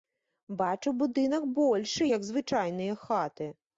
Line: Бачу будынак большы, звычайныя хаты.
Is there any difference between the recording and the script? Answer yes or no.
yes